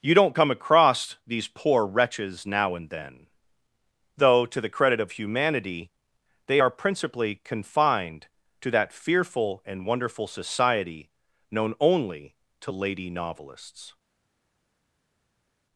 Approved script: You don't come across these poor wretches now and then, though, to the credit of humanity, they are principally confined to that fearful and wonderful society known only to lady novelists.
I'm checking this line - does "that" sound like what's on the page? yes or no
yes